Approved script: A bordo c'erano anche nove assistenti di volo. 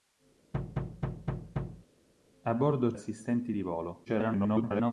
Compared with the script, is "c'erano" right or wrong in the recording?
wrong